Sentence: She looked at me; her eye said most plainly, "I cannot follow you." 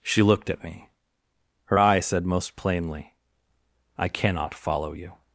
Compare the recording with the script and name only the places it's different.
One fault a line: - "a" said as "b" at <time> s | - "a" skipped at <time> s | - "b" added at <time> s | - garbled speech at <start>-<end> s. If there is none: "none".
none